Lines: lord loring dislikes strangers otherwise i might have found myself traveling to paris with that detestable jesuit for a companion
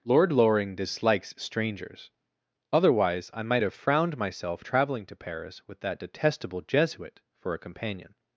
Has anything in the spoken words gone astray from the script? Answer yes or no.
yes